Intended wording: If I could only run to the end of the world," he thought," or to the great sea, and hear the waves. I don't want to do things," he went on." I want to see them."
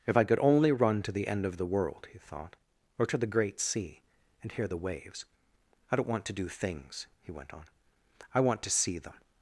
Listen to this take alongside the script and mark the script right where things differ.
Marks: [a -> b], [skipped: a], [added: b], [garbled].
If I could only run to the end of the world," he thought," or to the great sea, and hear the waves. I don't want to do things," he went on." I want to see them."